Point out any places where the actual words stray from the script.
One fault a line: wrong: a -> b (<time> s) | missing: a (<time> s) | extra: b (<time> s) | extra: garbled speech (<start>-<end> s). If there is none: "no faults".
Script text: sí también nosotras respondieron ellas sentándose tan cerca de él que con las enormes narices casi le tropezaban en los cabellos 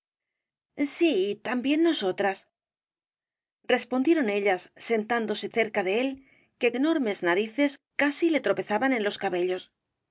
missing: tan (5.5 s)
missing: con las (6.7 s)